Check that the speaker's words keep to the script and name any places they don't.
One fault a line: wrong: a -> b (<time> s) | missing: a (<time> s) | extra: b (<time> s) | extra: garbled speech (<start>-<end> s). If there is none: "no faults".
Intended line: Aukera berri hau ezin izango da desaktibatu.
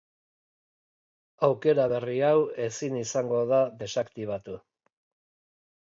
no faults